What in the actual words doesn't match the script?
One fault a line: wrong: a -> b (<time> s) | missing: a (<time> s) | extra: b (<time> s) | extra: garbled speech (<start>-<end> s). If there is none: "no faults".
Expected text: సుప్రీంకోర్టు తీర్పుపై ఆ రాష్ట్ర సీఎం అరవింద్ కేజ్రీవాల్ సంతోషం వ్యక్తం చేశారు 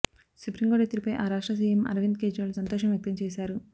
no faults